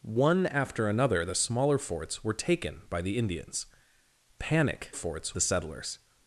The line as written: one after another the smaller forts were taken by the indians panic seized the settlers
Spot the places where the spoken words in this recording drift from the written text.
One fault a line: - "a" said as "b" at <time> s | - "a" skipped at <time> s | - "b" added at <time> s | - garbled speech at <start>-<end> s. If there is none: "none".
- "seized" said as "forts" at 4.9 s